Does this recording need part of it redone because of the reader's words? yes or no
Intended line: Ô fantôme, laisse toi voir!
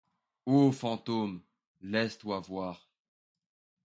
no